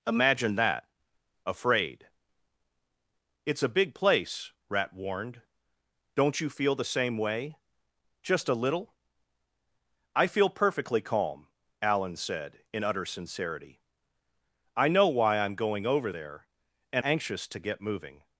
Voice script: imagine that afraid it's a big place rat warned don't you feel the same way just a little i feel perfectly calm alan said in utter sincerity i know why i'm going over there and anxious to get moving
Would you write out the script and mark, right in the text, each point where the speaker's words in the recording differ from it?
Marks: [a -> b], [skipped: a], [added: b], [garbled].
imagine that afraid it's a big place rat warned don't you feel the same way just a little i feel perfectly calm alan said in utter sincerity i know why i'm going over there and anxious to get moving